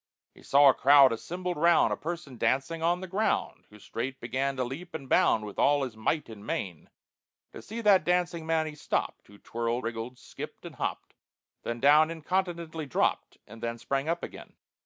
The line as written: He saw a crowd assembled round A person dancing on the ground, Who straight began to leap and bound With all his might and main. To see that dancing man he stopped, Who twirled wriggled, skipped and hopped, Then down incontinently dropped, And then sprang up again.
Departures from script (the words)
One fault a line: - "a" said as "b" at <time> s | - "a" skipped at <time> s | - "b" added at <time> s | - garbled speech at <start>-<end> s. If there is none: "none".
none